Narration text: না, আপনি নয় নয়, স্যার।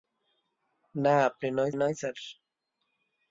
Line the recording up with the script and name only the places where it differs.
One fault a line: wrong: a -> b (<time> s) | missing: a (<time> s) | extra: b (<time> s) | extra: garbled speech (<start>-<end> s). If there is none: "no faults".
no faults